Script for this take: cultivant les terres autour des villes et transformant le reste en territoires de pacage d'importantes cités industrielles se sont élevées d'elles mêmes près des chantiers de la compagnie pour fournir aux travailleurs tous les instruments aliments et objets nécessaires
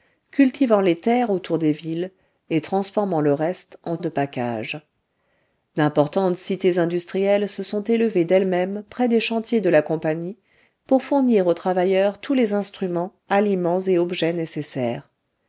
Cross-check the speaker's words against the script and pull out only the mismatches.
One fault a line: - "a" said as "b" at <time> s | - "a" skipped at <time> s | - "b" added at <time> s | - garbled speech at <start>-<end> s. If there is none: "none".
- "territoires" skipped at 4.0 s